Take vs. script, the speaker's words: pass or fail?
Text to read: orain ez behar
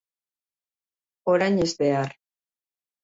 pass